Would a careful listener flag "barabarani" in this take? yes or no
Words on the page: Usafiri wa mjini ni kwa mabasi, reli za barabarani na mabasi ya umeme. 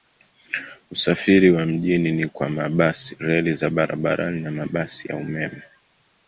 no